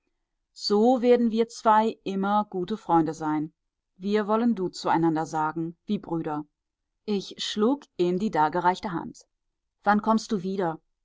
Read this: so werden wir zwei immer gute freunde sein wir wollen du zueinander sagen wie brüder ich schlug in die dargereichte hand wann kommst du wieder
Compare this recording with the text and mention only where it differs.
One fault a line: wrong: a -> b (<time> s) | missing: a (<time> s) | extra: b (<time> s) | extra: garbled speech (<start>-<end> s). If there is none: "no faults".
no faults